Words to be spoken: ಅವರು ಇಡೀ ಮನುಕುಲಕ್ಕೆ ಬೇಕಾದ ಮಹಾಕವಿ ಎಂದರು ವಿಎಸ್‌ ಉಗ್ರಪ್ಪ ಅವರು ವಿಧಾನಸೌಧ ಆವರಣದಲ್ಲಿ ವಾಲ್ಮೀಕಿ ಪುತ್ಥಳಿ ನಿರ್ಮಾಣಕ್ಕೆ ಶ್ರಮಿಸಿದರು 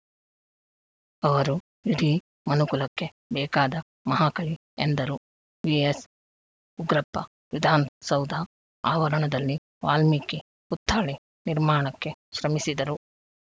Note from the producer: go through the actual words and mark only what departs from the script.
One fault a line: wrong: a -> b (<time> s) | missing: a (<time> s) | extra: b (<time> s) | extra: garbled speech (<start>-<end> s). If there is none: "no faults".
missing: ಅವರು (7.2 s)